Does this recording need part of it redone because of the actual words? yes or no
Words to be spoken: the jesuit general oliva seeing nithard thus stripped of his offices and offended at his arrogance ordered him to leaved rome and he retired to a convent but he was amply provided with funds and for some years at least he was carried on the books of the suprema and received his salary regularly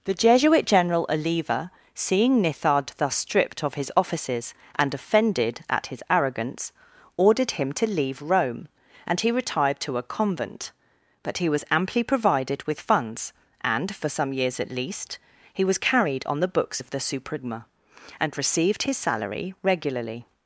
yes